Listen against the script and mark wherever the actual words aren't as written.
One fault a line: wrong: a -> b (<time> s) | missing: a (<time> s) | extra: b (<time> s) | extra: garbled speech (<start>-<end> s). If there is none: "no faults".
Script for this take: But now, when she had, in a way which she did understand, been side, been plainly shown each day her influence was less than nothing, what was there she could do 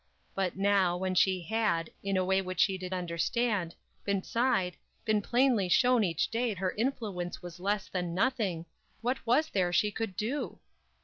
no faults